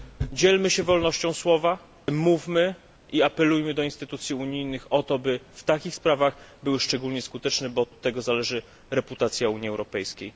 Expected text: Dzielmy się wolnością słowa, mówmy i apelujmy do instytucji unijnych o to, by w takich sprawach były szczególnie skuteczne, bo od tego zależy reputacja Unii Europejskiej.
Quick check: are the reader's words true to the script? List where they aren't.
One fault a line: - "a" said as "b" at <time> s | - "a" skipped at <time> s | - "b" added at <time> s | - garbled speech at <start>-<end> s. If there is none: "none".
- "od" added at 7.9 s